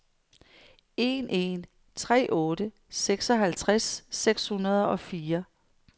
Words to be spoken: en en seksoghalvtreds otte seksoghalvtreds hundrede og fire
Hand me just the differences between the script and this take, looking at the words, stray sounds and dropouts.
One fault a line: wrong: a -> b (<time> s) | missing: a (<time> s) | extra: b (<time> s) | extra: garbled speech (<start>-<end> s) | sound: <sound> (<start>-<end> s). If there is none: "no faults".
wrong: seksoghalvtreds -> tre (1.9 s)
extra: seks (4.1 s)